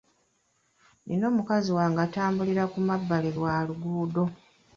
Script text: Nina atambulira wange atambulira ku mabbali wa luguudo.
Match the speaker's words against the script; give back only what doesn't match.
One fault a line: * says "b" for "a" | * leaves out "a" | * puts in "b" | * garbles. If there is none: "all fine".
* says "mukazi" for "atambulira"